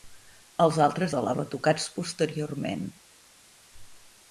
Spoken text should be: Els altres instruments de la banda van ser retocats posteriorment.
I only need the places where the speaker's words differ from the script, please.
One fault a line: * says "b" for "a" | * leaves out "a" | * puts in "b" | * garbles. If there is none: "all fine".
* leaves out "instruments"
* leaves out "banda van ser"